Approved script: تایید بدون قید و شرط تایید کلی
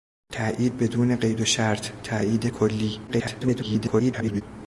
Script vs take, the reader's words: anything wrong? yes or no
yes